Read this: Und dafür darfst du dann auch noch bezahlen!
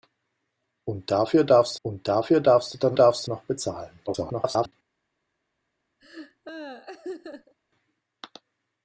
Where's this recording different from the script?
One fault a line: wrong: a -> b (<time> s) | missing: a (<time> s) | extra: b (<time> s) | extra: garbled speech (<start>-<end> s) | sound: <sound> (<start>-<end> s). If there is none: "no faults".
extra: und dafür darfst (1.8 s)
wrong: auch -> darfst (2.9 s)
extra: garbled speech (4.1-4.7 s)
sound: laugh (6.0-7.5 s)